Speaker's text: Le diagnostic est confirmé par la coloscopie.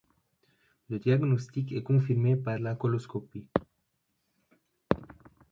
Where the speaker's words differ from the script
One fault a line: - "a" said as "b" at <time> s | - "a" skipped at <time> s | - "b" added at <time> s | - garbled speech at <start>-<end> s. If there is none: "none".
none